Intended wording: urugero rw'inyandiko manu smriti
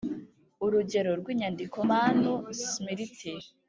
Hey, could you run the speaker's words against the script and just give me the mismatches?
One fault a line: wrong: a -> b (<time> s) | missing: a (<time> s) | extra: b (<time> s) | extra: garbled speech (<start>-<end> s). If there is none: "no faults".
no faults